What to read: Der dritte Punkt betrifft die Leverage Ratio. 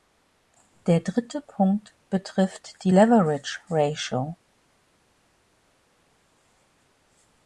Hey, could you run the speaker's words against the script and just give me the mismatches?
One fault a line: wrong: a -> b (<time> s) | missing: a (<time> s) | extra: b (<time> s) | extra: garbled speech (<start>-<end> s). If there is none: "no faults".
no faults